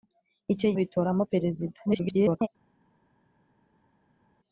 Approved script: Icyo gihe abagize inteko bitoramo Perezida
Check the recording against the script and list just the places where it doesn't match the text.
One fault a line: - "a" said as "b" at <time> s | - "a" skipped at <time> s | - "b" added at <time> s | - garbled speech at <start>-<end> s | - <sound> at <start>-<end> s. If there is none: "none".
- "gihe abagize inteko" skipped at 0.7 s
- garbled speech at 1.9-2.5 s